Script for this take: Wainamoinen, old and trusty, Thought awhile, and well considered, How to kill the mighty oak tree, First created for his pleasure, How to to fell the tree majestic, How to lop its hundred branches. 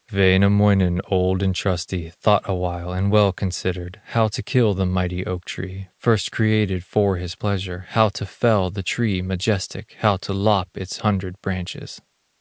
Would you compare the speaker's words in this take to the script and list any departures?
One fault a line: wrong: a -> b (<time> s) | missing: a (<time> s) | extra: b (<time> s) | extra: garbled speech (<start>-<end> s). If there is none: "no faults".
missing: to (8.3 s)